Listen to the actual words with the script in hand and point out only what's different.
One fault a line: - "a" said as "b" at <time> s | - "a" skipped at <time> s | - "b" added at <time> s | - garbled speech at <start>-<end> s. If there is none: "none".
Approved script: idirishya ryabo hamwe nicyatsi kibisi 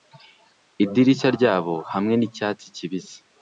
none